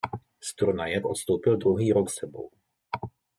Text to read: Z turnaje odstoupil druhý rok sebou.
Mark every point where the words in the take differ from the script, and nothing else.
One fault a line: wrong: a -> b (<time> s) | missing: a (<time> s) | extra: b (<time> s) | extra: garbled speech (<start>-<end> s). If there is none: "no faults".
no faults